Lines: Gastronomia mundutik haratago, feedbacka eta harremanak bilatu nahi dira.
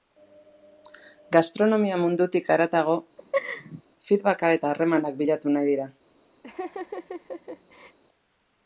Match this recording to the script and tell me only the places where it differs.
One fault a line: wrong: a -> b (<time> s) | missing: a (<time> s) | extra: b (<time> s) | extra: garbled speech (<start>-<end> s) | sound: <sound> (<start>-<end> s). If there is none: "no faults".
sound: laugh (3.2-3.8 s)
sound: laugh (6.4-8.0 s)